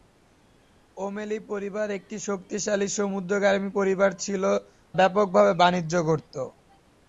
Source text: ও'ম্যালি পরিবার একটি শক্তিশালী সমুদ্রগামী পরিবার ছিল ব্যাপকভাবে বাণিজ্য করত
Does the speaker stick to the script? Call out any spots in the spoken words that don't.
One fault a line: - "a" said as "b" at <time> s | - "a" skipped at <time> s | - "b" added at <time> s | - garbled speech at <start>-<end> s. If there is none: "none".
none